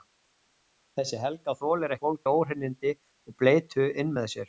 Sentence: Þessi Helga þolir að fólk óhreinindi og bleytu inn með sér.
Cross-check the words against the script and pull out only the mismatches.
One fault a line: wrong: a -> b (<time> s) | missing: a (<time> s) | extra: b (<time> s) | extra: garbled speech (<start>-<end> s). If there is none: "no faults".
no faults